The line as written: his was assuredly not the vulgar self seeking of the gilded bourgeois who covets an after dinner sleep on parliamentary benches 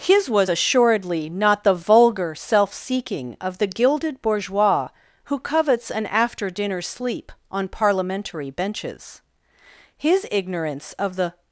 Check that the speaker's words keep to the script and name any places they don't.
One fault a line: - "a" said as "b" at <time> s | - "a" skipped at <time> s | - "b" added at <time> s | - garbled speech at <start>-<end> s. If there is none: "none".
- "his ignorance of the" added at 10.0 s